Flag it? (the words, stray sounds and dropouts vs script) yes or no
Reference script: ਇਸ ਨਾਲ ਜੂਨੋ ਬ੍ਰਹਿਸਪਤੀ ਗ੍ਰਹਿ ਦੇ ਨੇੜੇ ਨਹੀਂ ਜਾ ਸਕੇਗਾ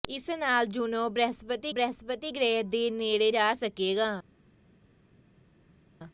yes